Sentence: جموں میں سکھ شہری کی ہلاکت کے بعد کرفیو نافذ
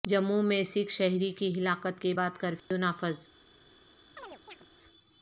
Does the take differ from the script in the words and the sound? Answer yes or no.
yes